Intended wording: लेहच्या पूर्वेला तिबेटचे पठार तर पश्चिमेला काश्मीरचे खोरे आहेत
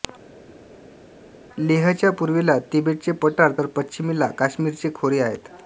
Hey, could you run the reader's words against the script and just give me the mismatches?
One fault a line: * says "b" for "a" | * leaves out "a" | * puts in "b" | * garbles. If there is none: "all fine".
all fine